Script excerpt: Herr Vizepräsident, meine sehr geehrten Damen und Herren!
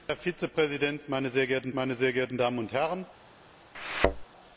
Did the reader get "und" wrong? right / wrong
right